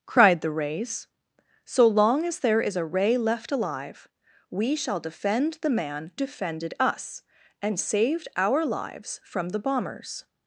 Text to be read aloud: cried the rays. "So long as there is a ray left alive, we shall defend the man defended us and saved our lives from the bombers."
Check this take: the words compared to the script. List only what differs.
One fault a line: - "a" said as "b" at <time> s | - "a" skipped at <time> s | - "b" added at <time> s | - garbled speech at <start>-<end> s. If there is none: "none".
none